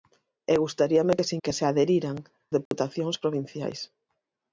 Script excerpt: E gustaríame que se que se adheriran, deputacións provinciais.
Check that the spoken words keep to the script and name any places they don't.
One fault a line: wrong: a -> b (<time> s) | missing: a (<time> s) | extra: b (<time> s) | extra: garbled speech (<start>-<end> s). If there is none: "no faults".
no faults